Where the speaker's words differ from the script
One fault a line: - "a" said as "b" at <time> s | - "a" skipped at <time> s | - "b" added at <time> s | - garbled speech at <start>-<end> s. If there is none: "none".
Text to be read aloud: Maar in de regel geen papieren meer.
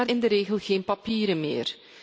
none